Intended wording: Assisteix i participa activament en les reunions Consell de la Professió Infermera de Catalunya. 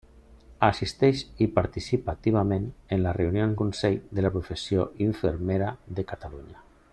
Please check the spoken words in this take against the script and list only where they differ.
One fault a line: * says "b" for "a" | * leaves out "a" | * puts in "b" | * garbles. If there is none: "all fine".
all fine